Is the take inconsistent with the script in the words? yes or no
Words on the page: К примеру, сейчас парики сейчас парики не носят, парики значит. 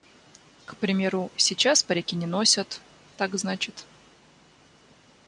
yes